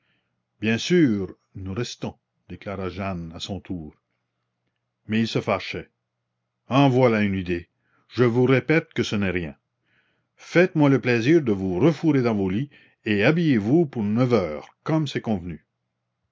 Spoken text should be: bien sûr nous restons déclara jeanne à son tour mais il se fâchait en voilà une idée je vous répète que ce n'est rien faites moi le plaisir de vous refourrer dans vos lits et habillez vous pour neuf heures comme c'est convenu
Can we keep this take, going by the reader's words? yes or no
yes